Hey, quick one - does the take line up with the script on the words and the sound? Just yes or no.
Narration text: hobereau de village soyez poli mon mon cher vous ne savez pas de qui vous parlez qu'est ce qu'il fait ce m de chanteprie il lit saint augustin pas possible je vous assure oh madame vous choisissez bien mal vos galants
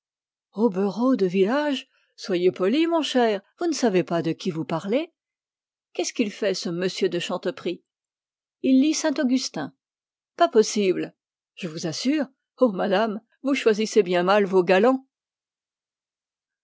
no